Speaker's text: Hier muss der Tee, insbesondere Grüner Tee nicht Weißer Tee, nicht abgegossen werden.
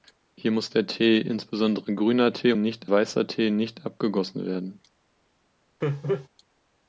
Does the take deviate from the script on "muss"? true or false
false